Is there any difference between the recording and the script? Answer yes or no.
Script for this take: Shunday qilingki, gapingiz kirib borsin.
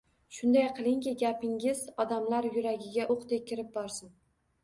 yes